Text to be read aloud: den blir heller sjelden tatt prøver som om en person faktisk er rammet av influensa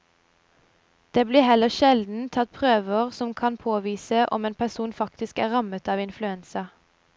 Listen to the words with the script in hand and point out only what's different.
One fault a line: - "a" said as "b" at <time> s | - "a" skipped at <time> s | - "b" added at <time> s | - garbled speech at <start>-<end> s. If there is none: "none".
- "den" said as "det" at 1.1 s
- "kan påvise" added at 3.3 s